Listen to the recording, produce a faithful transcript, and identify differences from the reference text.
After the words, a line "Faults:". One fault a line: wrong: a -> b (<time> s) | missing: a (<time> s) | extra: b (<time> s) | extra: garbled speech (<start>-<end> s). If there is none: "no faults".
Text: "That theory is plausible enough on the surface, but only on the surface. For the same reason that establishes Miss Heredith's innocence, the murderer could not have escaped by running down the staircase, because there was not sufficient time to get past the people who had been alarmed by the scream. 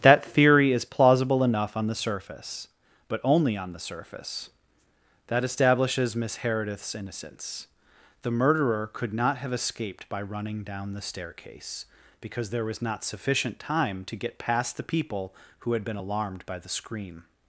"That theory is plausible enough on the surface, but only on the surface. that establishes Miss Heredith's innocence, the murderer could not have escaped by running down the staircase, because there was not sufficient time to get past the people who had been alarmed by the scream.
Faults:
missing: For the same reason (4.5 s)